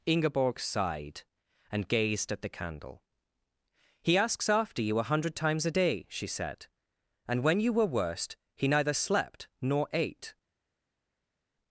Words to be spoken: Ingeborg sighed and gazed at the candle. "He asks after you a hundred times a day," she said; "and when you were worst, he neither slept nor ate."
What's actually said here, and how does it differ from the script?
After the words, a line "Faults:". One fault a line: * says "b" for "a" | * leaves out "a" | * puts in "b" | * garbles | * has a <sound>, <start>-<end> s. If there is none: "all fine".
Ingeborg sighed and gazed at the candle. "He asks after you a hundred times a day," she said; "and when you were worst, he neither slept nor ate."
Faults:
all fine